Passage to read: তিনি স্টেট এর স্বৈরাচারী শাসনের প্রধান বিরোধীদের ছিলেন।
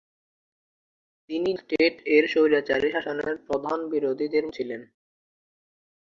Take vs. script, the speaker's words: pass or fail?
pass